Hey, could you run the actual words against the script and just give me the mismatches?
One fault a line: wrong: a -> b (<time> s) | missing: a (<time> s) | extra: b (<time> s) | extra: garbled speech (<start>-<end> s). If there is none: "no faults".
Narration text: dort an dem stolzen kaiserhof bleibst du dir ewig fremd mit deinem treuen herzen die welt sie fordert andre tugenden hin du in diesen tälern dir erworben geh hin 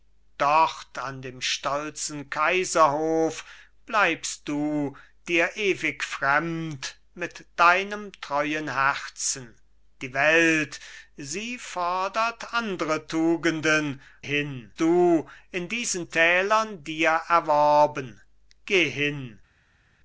no faults